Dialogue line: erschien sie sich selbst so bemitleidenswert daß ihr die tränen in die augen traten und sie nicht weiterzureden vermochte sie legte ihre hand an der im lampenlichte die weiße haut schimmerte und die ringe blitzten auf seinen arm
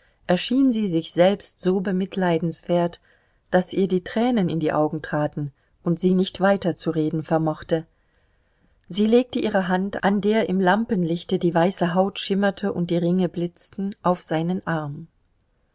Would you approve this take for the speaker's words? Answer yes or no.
yes